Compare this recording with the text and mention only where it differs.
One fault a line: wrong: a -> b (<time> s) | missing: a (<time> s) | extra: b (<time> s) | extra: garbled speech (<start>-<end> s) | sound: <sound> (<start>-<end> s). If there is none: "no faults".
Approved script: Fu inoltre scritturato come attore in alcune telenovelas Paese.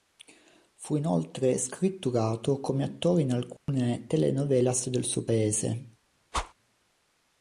sound: dropout (3.6-3.7 s)
extra: del suo (4.9 s)
sound: whoosh (6.3-6.5 s)